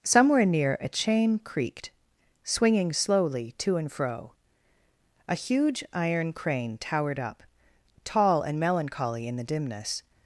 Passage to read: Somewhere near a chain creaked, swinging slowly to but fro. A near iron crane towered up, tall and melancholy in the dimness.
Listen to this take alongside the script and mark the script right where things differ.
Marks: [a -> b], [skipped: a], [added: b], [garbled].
Somewhere near a chain creaked, swinging slowly to [but -> and] fro. A [near -> huge] iron crane towered up, tall and melancholy in the dimness.